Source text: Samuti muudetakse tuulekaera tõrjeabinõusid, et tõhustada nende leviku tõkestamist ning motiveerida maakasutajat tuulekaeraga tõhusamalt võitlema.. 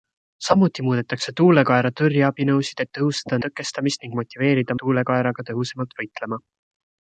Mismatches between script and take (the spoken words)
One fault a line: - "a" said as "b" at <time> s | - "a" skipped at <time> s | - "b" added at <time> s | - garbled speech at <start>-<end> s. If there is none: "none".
- "nende leviku" skipped at 3.4 s
- "maakasutajat" skipped at 4.8 s